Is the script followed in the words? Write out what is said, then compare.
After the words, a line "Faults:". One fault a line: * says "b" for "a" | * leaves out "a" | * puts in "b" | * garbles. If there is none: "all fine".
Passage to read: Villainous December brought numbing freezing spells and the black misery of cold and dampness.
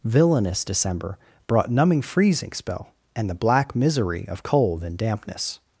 Villainous December brought numbing freezing spell and the black misery of cold and dampness.
Faults:
* says "spell" for "spells"